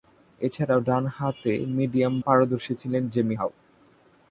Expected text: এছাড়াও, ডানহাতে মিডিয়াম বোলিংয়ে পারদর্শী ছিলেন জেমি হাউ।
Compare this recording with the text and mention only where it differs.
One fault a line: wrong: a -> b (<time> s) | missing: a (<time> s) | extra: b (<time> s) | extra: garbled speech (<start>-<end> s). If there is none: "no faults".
missing: বোলিংয়ে (2.1 s)